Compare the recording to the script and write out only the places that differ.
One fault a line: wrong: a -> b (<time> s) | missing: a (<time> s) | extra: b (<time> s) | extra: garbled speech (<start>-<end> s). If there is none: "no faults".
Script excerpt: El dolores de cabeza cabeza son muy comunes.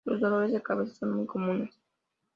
wrong: El -> Los (0.1 s)
missing: cabeza (0.9 s)